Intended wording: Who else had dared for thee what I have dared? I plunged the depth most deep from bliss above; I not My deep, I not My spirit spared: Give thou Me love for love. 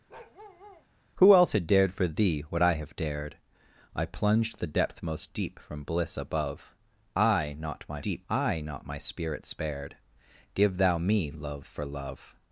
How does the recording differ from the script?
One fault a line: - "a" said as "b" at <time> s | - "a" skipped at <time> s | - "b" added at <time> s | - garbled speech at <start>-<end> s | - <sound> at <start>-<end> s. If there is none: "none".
- bark at 0.1-0.9 s